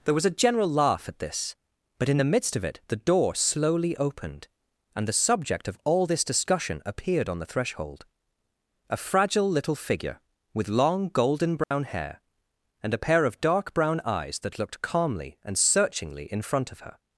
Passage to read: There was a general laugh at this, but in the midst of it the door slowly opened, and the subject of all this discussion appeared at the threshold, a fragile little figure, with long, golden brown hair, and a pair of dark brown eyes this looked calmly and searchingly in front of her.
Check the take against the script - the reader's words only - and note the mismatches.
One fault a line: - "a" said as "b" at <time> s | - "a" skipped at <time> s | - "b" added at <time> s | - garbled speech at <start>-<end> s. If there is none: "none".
- "at" said as "on" at 7.3 s
- "this" said as "that" at 14.4 s